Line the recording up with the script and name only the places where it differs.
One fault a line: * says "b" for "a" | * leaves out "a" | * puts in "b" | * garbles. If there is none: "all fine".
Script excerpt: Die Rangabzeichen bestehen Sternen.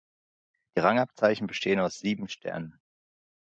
* puts in "aus sieben"